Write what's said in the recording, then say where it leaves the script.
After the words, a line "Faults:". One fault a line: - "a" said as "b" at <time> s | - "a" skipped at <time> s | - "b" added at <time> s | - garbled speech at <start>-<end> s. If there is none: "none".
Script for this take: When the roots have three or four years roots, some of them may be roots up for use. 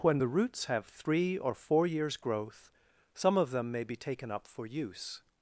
When the roots have three or four years growth, some of them may be taken up for use.
Faults:
- "roots" said as "growth" at 2.2 s
- "roots" said as "taken" at 4.0 s